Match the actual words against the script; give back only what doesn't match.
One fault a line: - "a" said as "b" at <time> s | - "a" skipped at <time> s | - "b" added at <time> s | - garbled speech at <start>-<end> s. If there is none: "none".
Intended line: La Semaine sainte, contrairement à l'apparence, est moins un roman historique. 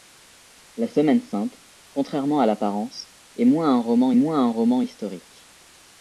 - "moins un roman" added at 4.1 s